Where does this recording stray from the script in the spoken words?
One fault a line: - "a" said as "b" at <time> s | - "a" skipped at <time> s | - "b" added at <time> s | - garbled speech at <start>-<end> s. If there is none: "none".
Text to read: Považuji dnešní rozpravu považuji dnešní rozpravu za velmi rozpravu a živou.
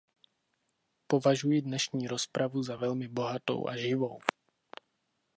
- "považuji dnešní rozpravu" skipped at 2.6 s
- "rozpravu" said as "bohatou" at 3.1 s